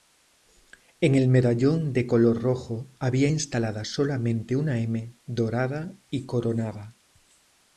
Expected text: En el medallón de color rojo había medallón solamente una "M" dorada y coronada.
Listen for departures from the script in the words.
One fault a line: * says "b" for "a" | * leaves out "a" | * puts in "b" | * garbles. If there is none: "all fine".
* says "instalada" for "medallón"